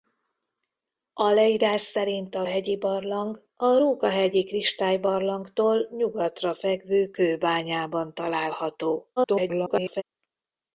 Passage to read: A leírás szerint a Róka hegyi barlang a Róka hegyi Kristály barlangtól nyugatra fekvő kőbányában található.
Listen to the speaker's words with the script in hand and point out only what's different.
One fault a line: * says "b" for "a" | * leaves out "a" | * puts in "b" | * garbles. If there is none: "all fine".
* leaves out "Róka"
* garbles